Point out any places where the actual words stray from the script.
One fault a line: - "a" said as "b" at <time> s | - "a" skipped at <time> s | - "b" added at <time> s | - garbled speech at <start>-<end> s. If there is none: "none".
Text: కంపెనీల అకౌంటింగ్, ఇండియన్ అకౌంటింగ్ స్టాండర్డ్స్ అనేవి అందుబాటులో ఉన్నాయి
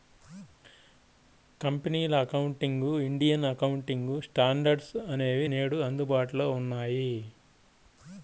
- "నేడు" added at 5.5 s